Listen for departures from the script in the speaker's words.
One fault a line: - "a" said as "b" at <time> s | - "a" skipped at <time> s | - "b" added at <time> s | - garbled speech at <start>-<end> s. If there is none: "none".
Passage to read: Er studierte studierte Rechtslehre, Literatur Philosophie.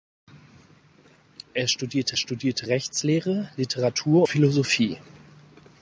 none